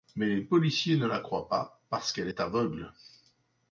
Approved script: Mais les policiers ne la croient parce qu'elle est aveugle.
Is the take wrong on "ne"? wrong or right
right